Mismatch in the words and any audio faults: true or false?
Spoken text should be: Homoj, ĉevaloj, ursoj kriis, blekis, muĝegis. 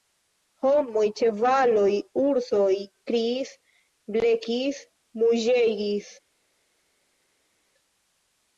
false